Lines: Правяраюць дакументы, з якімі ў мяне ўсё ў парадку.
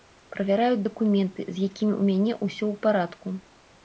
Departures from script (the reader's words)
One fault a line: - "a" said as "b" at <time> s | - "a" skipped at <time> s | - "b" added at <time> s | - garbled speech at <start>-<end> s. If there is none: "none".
none